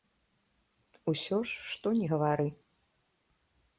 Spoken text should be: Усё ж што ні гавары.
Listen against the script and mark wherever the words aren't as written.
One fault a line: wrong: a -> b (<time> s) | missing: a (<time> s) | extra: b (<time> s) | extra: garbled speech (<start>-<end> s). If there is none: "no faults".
no faults